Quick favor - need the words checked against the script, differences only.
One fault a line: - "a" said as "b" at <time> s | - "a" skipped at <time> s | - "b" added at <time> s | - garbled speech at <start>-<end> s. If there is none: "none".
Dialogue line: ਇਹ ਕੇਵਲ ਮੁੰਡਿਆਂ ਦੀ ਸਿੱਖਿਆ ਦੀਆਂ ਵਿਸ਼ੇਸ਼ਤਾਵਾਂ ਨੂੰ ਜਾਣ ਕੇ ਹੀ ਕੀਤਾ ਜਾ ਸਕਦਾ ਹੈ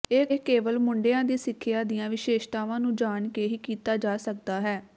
none